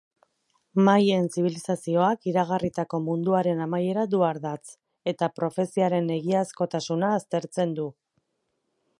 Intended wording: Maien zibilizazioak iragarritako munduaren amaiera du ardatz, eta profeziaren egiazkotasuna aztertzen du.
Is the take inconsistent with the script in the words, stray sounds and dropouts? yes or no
no